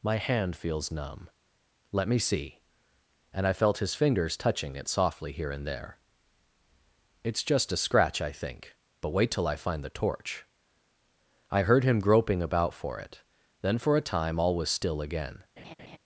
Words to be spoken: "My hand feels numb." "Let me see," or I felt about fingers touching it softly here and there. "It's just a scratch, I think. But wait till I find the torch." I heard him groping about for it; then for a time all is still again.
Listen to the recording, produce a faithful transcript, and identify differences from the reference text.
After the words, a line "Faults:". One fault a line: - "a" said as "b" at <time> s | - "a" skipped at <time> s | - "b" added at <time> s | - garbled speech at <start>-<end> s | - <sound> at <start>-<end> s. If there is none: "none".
"My hand feels numb." "Let me see," and I felt his fingers touching it softly here and there. "It's just a scratch, I think. But wait till I find the torch." I heard him groping about for it; then for a time all was still again.
Faults:
- "or" said as "and" at 3.3 s
- "about" said as "his" at 3.8 s
- "is" said as "was" at 14.6 s
- laugh at 15.6-16.0 s